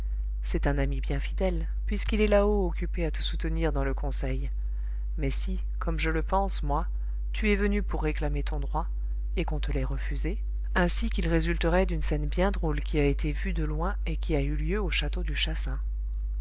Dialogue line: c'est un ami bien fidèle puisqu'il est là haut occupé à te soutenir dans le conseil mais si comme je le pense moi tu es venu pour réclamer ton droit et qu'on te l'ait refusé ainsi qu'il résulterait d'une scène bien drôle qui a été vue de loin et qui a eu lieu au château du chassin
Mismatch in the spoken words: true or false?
false